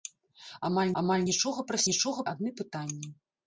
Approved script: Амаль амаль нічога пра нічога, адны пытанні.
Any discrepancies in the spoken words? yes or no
no